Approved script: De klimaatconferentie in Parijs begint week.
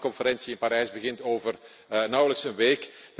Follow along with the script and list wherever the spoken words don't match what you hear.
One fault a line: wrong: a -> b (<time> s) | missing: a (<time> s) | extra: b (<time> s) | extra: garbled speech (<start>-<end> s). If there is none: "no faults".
extra: over nauwelijks een (1.2 s)